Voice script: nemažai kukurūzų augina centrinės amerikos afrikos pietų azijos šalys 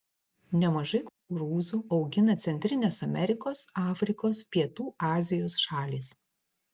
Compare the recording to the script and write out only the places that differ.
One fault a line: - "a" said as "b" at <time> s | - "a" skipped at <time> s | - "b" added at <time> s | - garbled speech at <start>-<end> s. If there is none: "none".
none